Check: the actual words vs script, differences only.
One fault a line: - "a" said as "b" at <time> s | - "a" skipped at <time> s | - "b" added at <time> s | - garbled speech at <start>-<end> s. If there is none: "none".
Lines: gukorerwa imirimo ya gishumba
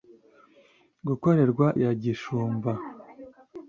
- "imirimo" skipped at 1.7 s